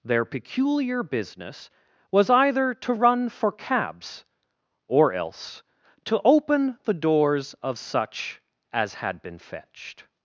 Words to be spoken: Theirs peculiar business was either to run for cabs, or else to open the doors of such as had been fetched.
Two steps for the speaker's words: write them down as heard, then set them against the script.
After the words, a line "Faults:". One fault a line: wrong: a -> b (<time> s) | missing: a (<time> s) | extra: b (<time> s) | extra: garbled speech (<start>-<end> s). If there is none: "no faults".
Their peculiar business was either to run for cabs, or else to open the doors of such as had been fetched.
Faults:
wrong: Theirs -> Their (0.0 s)